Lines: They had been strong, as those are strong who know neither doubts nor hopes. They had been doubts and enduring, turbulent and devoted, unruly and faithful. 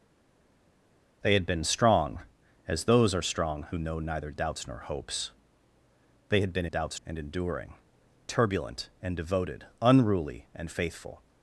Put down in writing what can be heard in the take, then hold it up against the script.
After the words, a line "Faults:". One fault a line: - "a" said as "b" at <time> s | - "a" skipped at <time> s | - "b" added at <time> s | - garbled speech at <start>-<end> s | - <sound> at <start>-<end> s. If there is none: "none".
They had been strong, as those are strong who know neither doubts nor hopes. They had been doubts and enduring, turbulent and devoted, unruly and faithful.
Faults:
none